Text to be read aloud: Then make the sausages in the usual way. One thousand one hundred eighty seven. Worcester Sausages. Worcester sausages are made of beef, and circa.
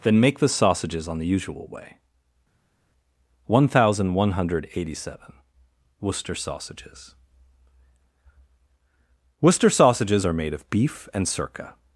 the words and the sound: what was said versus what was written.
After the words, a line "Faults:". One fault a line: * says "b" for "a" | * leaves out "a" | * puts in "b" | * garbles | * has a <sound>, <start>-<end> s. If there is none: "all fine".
Then make the sausages on the usual way. One thousand one hundred eighty seven. Worcester Sausages. Worcester sausages are made of beef, and circa.
Faults:
* says "on" for "in"